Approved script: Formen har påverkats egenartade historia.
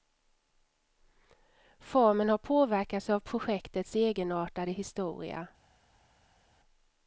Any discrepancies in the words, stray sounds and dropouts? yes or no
yes